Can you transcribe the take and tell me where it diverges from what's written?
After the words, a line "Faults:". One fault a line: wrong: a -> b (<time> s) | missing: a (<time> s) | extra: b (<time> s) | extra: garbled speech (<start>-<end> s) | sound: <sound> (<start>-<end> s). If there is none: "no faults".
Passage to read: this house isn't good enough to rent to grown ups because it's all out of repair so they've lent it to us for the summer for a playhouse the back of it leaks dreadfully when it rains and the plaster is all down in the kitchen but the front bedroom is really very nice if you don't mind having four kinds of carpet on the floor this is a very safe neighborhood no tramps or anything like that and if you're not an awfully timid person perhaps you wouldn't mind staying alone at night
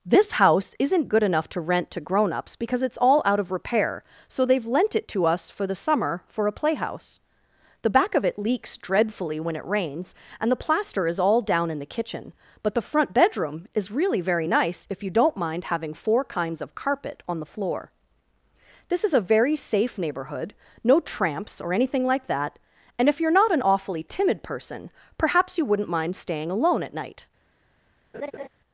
this house isn't good enough to rent to grown ups because it's all out of repair so they've lent it to us for the summer for a playhouse the back of it leaks dreadfully when it rains and the plaster is all down in the kitchen but the front bedroom is really very nice if you don't mind having four kinds of carpet on the floor this is a very safe neighborhood no tramps or anything like that and if you're not an awfully timid person perhaps you wouldn't mind staying alone at night
Faults:
sound: laugh (28.1-28.5 s)